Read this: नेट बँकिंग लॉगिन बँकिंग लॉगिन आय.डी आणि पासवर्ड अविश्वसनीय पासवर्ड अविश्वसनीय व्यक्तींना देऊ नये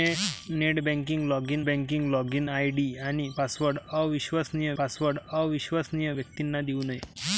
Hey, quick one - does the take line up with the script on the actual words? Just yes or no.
yes